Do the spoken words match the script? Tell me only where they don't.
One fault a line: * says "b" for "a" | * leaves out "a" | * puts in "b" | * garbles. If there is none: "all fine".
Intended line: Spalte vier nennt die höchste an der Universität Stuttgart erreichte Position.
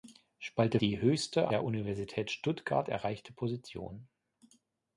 * leaves out "vier nennt"
* leaves out "an"